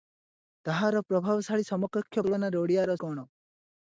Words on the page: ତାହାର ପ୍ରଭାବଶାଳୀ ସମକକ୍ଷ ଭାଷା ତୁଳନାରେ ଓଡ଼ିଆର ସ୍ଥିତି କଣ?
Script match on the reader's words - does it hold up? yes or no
no